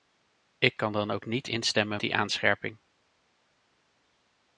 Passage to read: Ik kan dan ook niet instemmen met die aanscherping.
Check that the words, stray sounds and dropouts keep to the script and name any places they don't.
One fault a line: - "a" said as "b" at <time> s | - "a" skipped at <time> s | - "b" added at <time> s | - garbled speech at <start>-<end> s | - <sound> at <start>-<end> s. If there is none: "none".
- "met" skipped at 2.0 s